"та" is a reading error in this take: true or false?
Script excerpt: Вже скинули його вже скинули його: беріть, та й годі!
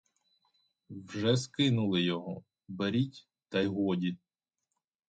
false